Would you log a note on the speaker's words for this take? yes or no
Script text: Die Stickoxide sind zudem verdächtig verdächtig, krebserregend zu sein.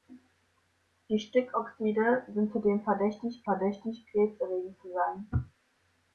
no